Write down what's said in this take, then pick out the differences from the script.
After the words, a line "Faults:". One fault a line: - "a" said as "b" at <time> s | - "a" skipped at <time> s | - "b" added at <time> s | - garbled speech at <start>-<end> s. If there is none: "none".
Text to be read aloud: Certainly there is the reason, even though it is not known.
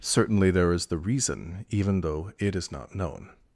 Certainly there is the reason, even though it is not known.
Faults:
none